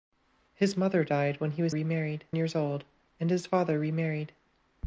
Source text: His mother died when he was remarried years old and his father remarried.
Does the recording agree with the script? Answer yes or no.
yes